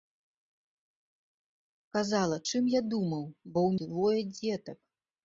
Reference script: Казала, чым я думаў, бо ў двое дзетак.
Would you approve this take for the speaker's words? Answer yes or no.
yes